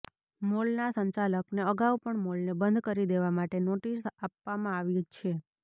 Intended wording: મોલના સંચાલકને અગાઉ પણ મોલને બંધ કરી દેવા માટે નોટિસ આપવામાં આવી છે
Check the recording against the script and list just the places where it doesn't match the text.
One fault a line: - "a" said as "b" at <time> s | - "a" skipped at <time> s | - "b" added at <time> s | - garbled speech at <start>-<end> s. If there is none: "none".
none